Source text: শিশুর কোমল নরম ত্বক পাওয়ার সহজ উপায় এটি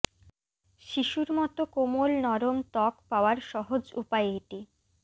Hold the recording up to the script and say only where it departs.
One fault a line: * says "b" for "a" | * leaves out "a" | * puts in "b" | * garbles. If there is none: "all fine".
* puts in "মতো"